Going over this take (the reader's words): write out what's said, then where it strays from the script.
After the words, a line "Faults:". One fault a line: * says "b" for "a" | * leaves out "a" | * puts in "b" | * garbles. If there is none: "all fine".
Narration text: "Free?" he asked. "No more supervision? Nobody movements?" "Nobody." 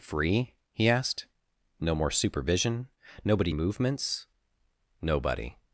"Free?" he asked. "No more supervision? Nobody movements?" "Nobody."
Faults:
all fine